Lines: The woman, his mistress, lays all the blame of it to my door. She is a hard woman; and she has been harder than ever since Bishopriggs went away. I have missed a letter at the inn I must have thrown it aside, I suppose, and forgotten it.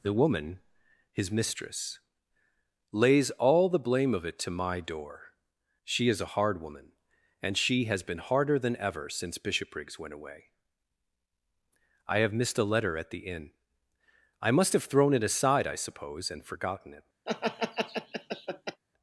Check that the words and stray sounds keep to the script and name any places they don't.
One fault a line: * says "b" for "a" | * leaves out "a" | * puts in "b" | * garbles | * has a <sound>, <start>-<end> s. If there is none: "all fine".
* has a laugh, 17.3-18.8 s